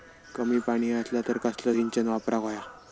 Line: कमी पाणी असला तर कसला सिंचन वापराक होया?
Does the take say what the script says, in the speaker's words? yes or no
yes